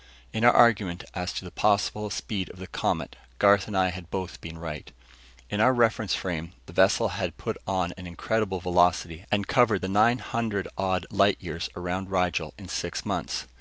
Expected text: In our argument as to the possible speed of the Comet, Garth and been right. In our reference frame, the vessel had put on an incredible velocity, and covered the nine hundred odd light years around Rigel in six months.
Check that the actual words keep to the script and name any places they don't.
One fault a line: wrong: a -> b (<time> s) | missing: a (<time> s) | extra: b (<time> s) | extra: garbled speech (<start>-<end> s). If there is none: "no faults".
extra: I had both (3.8 s)